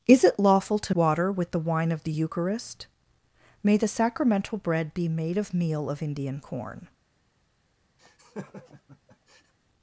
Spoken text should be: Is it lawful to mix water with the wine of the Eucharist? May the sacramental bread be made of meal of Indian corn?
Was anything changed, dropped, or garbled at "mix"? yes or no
yes